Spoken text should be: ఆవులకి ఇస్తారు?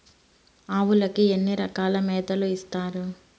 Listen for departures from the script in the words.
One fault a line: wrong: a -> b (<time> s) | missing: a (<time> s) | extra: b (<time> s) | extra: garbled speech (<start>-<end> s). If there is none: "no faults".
extra: ఎన్ని రకాల మేతలు (1.3 s)